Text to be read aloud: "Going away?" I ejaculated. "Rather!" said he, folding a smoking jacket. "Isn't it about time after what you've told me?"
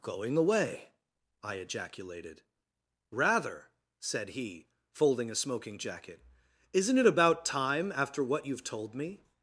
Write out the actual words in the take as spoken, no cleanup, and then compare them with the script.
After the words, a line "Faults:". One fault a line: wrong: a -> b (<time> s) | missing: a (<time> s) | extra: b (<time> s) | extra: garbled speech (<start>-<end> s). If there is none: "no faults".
"Going away?" I ejaculated. "Rather!" said he, folding a smoking jacket. "Isn't it about time after what you've told me?"
Faults:
no faults